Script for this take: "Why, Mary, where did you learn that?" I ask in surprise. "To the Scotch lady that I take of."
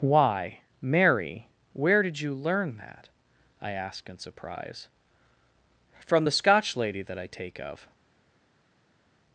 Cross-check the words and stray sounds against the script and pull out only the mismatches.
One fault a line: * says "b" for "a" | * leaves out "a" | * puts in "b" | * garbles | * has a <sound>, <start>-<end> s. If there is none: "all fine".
* says "From" for "To"